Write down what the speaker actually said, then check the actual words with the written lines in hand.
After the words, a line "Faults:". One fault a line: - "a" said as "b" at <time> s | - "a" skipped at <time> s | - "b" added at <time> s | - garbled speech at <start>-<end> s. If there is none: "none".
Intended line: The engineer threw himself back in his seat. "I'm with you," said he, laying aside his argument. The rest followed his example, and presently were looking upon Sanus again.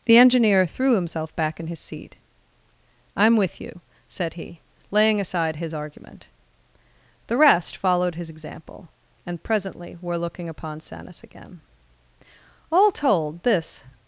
The engineer threw himself back in his seat. "I'm with you," said he, laying aside his argument. The rest followed his example, and presently were looking upon Sanus again. All told, this
Faults:
- "All told this" added at 12.7 s